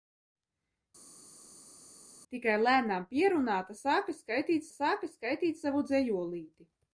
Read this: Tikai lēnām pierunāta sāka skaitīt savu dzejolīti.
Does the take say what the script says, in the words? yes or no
no